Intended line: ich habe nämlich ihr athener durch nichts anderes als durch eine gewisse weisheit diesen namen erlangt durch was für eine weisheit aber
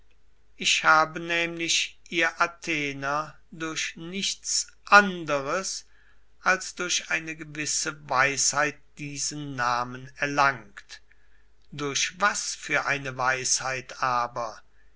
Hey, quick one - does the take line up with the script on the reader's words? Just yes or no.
yes